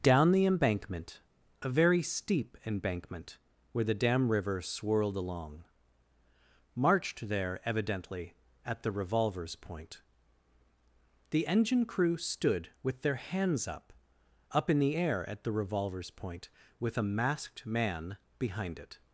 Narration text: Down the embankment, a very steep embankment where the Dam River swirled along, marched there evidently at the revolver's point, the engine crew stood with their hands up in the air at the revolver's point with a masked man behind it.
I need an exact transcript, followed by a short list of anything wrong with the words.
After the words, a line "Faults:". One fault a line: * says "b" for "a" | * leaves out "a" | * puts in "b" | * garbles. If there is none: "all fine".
Down the embankment, a very steep embankment where the Dam River swirled along, marched there evidently at the revolver's point, the engine crew stood with their hands up up in the air at the revolver's point with a masked man behind it.
Faults:
* puts in "up"